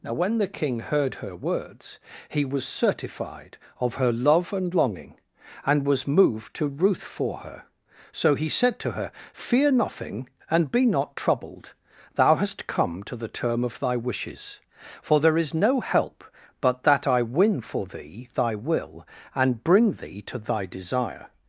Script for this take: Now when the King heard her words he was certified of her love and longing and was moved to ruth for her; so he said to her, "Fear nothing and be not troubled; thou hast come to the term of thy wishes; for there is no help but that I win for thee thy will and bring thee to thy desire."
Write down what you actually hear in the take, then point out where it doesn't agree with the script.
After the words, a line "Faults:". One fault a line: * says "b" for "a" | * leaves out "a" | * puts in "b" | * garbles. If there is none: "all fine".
Now when the King heard her words he was certified of her love and longing and was moved to ruth for her; so he said to her, "Fear nothing and be not troubled; thou hast come to the term of thy wishes; for there is no help but that I win for thee thy will and bring thee to thy desire."
Faults:
all fine